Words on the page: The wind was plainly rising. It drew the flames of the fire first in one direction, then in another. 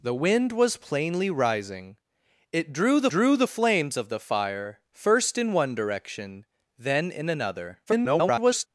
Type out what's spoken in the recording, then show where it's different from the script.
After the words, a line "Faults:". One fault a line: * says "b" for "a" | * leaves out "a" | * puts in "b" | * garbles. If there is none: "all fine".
The wind was plainly rising. It drew the drew the flames of the fire first in one direction, then in another. [garbled]
Faults:
* puts in "drew the"
* garbles